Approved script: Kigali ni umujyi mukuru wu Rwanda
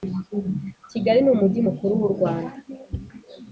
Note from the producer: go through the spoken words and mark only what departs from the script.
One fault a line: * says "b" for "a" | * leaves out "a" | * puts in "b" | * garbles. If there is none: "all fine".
all fine